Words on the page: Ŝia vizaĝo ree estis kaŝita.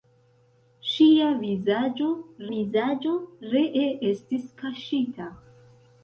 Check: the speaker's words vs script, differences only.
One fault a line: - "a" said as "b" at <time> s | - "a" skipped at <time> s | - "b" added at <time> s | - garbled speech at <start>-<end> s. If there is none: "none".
- "vizaĝo" added at 2.5 s